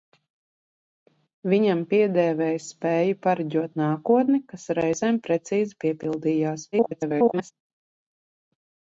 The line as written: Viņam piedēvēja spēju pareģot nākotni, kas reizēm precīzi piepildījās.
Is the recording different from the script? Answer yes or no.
yes